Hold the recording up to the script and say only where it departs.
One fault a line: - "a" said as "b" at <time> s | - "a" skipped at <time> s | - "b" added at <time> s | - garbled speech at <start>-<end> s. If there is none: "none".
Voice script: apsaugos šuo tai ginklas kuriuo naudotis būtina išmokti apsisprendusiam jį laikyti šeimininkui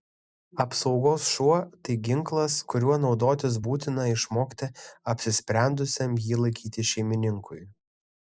none